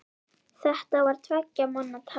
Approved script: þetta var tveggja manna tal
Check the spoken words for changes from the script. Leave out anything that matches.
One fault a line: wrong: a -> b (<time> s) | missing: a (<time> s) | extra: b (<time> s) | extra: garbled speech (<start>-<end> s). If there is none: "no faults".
no faults